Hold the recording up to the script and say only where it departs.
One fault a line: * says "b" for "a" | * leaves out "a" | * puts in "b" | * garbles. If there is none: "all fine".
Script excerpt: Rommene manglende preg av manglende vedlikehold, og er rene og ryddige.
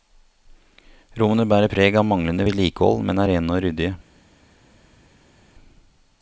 * says "bærer" for "manglende"
* says "men" for "og"